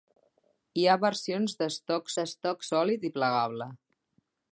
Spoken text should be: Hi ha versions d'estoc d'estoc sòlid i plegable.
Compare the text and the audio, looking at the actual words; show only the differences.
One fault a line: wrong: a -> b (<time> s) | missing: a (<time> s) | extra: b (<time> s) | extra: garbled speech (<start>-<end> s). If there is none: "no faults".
no faults